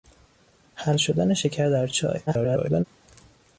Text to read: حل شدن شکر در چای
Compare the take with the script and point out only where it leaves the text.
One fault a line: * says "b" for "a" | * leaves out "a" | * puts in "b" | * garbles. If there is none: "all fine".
* garbles